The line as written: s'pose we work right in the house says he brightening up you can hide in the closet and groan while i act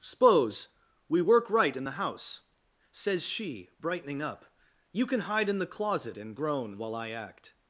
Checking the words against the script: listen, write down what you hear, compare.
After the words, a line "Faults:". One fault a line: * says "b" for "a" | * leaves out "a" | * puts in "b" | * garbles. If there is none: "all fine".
s'pose we work right in the house says she brightening up you can hide in the closet and groan while i act
Faults:
* says "she" for "he"